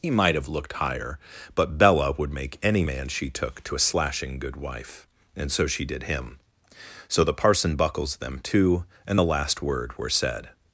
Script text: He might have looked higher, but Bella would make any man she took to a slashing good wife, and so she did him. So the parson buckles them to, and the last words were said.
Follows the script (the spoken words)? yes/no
no